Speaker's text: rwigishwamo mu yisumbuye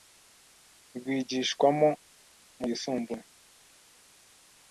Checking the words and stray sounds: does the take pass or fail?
pass